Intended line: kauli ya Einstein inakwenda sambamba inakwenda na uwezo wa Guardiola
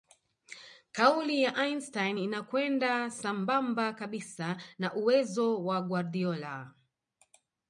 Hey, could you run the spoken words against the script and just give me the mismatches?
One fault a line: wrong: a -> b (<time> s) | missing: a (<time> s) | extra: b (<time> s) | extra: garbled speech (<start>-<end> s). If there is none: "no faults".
wrong: inakwenda -> kabisa (3.9 s)